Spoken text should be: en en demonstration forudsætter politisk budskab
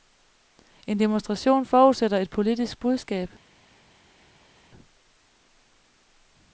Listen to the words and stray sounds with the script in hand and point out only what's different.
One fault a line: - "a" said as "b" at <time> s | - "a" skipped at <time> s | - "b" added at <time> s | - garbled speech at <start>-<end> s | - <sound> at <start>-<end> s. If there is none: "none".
- "en" skipped at 1.0 s
- "et" added at 2.2 s